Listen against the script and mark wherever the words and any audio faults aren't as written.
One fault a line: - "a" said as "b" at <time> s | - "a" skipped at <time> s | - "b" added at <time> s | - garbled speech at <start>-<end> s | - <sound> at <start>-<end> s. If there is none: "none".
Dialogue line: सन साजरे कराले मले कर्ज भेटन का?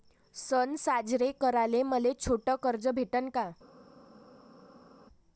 - "छोट" added at 2.1 s